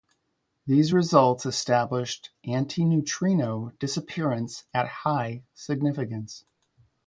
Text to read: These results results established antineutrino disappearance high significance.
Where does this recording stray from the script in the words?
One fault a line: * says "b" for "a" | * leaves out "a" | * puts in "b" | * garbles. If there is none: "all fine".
* leaves out "results"
* puts in "at"